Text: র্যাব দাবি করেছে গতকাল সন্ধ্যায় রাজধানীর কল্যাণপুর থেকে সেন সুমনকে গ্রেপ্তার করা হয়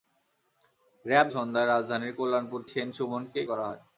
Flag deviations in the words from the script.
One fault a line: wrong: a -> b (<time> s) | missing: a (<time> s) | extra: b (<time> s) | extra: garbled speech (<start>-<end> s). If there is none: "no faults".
missing: দাবি করেছে গতকাল (1.3 s)
missing: থেকে (2.6 s)
missing: গ্রেপ্তার (3.4 s)